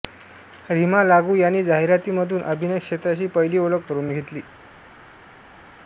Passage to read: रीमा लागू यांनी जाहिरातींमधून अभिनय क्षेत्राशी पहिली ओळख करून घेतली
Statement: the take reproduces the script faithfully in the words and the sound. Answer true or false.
true